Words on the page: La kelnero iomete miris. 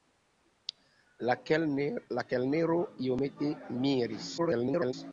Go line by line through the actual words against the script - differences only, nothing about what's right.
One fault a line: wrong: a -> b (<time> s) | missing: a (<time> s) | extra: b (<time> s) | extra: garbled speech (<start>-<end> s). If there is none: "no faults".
extra: garbled speech (4.4-4.9 s)